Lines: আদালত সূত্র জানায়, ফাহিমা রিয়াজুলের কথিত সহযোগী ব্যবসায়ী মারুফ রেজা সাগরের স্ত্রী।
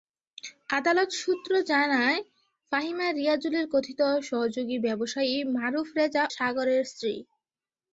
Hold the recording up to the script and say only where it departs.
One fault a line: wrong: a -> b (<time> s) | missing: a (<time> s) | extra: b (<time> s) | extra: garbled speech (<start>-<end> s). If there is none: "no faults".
no faults